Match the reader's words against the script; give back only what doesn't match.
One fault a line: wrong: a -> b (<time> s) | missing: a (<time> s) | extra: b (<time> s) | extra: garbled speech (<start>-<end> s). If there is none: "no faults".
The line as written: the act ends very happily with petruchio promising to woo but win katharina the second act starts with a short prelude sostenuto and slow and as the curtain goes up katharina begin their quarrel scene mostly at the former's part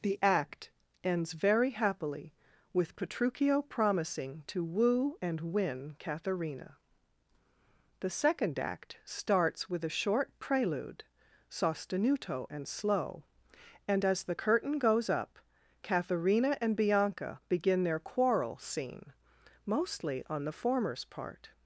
wrong: but -> and (5.2 s)
extra: and bianca (16.6 s)
wrong: at -> on (20.3 s)